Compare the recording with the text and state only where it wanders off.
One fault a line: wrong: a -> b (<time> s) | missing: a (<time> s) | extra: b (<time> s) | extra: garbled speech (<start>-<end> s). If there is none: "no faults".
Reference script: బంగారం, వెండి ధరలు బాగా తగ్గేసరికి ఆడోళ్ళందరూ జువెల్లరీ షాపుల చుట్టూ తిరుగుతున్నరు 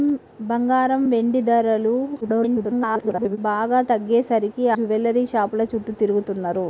extra: garbled speech (2.2-3.4 s)
missing: ఆడోళ్ళందరూ (4.6 s)